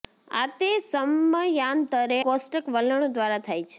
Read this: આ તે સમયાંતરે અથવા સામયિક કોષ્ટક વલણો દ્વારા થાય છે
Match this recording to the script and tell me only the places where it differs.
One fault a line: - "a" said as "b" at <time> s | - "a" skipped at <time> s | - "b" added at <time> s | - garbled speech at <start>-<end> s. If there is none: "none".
- "અથવા સામયિક" skipped at 2.2 s